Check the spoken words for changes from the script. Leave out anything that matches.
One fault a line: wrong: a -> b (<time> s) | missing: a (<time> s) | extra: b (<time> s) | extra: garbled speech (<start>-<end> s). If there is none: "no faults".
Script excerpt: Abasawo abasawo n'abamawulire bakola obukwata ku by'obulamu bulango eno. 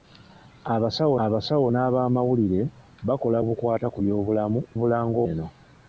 no faults